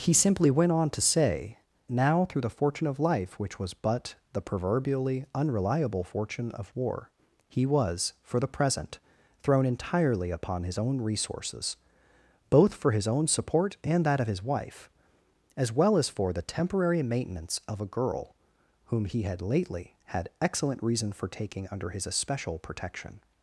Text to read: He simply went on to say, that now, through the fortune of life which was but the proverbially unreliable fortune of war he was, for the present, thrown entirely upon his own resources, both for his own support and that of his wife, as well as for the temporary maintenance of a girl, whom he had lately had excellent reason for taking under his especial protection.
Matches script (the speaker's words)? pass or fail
fail